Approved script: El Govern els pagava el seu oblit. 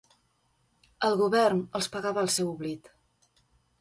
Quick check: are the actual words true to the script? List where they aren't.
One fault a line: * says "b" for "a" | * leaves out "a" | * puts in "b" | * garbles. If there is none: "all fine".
all fine